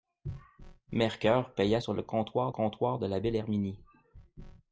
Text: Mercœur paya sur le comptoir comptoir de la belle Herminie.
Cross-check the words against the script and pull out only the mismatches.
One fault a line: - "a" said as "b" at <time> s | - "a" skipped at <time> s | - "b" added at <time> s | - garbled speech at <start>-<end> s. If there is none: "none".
none